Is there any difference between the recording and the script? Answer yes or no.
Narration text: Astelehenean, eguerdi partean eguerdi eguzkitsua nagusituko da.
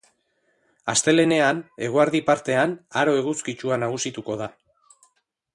yes